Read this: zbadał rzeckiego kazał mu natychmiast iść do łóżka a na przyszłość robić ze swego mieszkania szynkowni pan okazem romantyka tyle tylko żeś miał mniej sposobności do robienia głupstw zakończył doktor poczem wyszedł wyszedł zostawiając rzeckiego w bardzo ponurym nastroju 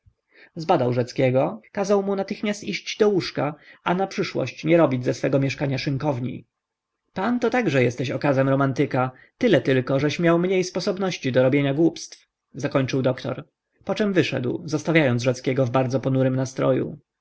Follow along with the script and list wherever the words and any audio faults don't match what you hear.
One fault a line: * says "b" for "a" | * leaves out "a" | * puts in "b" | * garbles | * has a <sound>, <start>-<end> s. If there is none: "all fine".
* puts in "nie"
* puts in "to także jesteś"
* leaves out "wyszedł"